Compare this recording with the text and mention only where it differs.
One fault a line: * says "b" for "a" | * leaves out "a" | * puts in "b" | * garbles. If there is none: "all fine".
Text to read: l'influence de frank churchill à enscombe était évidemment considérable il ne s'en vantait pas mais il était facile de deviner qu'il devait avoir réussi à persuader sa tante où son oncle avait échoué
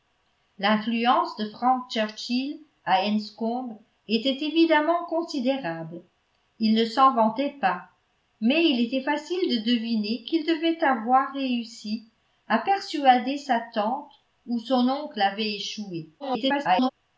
* garbles